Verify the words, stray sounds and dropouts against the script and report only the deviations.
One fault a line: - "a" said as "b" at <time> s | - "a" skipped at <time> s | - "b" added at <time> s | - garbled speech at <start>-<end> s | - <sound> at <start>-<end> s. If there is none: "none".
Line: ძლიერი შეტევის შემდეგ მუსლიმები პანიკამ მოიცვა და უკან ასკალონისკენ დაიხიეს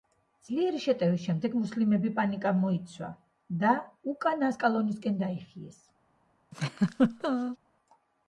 - laugh at 6.5-7.6 s